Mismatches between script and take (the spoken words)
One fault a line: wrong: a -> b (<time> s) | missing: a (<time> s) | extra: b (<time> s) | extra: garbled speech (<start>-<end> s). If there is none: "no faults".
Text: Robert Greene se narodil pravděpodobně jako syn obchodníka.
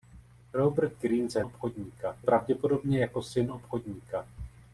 wrong: narodil -> obchodníka (1.4 s)